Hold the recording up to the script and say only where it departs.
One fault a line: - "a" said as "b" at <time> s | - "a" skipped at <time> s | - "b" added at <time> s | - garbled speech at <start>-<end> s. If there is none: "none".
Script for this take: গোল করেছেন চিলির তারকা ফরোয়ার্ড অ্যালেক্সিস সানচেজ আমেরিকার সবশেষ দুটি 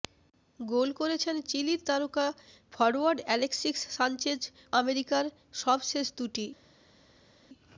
none